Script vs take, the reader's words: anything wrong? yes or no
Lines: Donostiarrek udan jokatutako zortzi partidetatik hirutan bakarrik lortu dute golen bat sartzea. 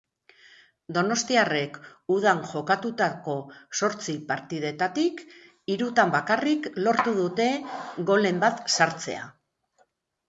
no